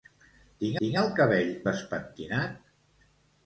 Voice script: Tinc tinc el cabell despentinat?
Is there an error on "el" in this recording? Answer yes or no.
no